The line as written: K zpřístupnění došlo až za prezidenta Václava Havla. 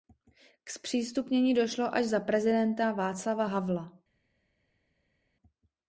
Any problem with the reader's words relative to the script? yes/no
no